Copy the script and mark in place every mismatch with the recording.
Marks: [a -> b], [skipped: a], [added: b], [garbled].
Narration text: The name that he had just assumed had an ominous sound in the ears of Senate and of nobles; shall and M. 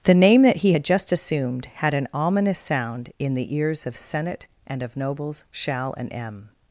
The name that he had just assumed had an ominous sound in the ears of Senate and of nobles; shall and M.